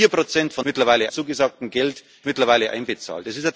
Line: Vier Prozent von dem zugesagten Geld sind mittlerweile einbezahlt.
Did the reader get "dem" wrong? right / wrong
wrong